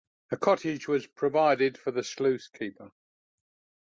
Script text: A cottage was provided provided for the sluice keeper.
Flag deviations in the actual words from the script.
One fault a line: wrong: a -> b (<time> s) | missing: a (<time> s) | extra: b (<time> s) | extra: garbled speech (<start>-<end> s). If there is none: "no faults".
missing: provided (1.8 s)